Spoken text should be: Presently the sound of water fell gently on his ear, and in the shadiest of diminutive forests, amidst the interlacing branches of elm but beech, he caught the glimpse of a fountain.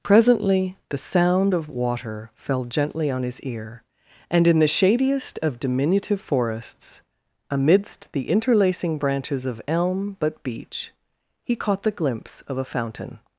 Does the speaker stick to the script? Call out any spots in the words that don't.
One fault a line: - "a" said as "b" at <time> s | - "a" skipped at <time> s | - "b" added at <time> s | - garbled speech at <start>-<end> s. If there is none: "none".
none